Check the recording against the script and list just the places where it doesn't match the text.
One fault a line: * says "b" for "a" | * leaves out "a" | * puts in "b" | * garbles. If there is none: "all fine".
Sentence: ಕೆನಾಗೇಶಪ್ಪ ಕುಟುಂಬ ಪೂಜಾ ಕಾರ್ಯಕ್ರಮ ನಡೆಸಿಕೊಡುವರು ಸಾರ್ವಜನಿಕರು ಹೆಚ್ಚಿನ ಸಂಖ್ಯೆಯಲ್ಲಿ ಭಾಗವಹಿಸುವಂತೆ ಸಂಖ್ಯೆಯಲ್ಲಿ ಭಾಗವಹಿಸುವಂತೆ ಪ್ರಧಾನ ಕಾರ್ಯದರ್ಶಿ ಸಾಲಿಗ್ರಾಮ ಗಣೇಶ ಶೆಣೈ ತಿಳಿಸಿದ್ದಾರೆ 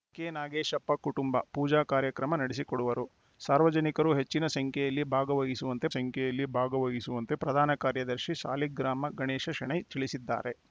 all fine